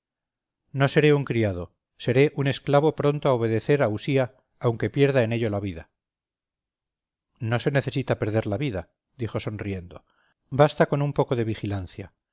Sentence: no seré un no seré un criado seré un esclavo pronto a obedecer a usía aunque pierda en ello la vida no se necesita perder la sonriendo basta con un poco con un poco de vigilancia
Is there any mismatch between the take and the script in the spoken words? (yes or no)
yes